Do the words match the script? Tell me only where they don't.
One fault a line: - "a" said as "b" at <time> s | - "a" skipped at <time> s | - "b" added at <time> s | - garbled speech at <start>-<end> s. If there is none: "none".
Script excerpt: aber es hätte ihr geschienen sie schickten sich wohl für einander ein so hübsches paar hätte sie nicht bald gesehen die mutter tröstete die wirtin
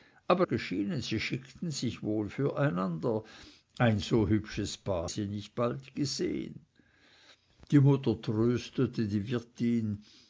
- "es hätte ihr" skipped at 0.5 s
- "hätte" skipped at 5.1 s